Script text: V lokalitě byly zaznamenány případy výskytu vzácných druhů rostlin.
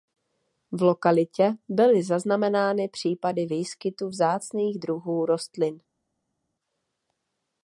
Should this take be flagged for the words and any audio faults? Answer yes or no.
no